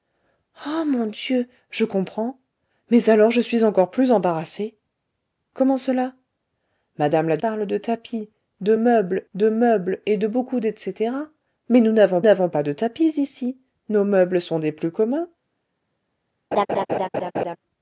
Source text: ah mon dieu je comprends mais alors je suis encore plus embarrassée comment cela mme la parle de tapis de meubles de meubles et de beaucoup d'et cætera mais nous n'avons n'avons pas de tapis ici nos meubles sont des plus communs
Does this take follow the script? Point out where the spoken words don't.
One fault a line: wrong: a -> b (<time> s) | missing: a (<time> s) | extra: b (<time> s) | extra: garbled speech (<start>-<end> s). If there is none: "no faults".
no faults